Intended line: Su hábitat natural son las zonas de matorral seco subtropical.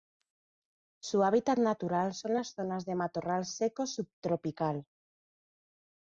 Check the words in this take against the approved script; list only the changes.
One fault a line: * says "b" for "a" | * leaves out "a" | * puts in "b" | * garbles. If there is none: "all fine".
all fine